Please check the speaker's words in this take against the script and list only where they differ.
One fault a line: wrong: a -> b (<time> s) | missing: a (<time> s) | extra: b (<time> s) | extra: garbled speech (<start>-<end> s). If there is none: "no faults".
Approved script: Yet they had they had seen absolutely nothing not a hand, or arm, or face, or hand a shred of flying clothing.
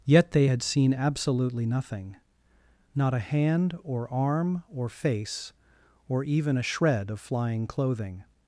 missing: they had (0.6 s)
wrong: hand -> even (6.2 s)